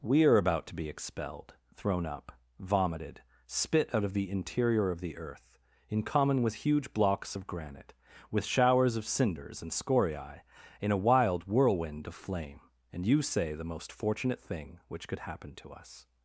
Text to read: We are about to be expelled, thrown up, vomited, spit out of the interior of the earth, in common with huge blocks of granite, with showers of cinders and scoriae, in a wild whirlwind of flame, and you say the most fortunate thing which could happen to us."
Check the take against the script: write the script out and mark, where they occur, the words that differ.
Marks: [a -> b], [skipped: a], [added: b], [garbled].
We are about to be expelled, thrown up, vomited, spit out of the interior of the earth, in common with huge blocks of granite, with showers of cinders and scoriae, in a wild whirlwind of flame, and you say the most fortunate thing which could happen to us."